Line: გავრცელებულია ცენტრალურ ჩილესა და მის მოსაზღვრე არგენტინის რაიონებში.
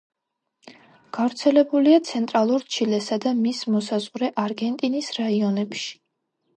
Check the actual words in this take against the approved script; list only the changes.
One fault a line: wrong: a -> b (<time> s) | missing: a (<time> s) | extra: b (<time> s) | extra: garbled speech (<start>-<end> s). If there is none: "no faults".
no faults